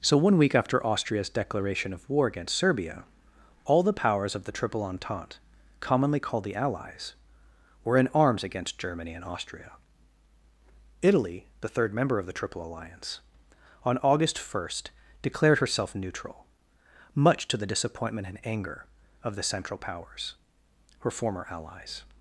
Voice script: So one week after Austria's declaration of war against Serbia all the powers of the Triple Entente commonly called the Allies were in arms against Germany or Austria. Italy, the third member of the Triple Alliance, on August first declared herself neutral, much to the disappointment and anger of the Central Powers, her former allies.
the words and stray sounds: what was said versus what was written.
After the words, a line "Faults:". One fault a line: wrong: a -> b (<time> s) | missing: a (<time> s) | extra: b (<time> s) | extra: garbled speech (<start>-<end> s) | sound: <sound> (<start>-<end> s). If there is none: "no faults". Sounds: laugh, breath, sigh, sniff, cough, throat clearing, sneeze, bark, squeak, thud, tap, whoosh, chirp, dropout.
So one week after Austria's declaration of war against Serbia all the powers of the Triple Entente commonly called the Allies were in arms against Germany and Austria. Italy, the third member of the Triple Alliance, on August first declared herself neutral, much to the disappointment and anger of the Central Powers, her former allies.
Faults:
wrong: or -> and (9.1 s)